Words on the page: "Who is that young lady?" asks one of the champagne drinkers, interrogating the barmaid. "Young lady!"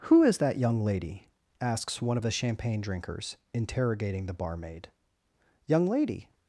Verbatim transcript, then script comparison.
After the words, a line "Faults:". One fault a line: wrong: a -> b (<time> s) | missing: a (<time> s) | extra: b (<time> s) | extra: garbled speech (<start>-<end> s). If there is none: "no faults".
"Who is that young lady?" asks one of the champagne drinkers, interrogating the barmaid. "Young lady!"
Faults:
no faults